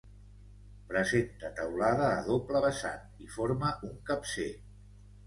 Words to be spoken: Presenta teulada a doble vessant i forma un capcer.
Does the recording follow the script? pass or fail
pass